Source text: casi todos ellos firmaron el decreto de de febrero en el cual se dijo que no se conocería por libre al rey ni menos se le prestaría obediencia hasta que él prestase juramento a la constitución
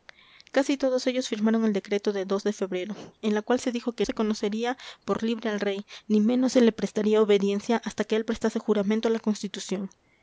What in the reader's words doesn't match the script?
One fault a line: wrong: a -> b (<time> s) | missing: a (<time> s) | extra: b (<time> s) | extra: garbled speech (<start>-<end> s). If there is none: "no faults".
missing: no (4.1 s)